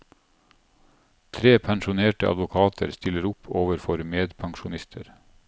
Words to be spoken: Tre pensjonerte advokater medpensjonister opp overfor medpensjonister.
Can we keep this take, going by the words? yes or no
no